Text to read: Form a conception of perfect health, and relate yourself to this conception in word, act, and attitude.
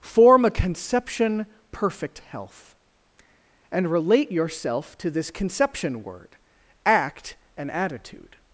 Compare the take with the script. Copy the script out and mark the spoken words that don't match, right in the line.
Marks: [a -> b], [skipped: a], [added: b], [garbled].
Form a conception [skipped: of] perfect health, and relate yourself to this conception [skipped: in] word, act, and attitude.